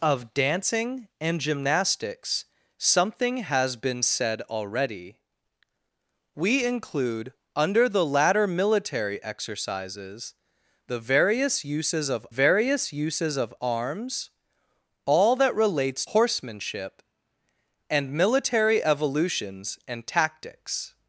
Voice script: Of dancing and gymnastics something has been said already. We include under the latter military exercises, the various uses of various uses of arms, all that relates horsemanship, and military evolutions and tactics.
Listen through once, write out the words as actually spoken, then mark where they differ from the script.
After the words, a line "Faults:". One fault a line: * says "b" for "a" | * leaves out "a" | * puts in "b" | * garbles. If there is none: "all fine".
Of dancing and gymnastics something has been said already. We include under the latter military exercises, the various uses of various uses of arms, all that relates horsemanship, and military evolutions and tactics.
Faults:
all fine